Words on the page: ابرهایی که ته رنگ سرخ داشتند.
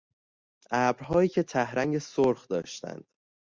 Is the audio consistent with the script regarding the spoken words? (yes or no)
yes